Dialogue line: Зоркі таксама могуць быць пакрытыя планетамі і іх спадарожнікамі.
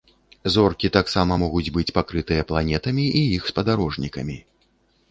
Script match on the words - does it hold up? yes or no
yes